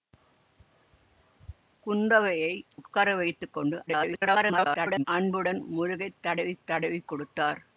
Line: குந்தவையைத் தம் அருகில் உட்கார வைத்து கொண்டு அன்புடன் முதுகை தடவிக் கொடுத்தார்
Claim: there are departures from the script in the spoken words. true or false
true